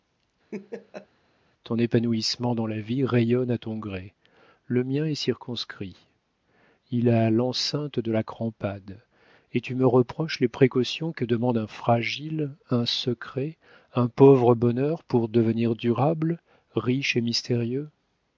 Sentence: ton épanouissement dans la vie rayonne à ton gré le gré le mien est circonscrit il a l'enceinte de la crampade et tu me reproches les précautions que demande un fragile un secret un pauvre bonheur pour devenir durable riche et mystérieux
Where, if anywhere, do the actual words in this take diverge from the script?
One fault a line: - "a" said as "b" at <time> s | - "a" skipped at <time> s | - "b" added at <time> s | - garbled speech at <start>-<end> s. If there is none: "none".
- "gré le" skipped at 4.8 s